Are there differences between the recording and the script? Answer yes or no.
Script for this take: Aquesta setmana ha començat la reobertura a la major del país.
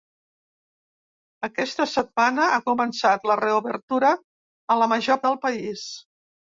no